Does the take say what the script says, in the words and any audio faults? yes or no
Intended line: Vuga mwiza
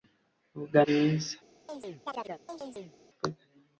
no